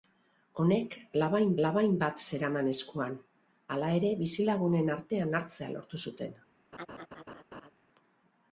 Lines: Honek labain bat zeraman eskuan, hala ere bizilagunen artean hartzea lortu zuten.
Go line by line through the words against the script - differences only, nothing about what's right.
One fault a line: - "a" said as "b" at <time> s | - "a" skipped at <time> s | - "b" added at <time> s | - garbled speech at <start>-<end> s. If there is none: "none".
- "labain" added at 1.7 s